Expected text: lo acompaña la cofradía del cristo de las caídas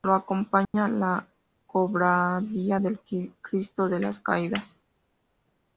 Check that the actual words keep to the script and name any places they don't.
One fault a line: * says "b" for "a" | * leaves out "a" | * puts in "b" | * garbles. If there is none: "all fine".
all fine